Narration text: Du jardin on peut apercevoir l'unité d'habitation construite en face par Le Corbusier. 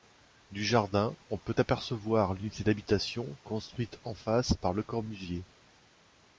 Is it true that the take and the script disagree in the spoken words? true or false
false